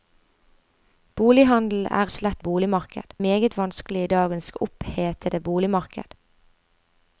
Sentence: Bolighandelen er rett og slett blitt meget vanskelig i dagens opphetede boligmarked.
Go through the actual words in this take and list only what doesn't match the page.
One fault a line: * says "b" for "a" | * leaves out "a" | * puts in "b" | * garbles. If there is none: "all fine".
* leaves out "rett"
* says "boligmarked" for "blitt"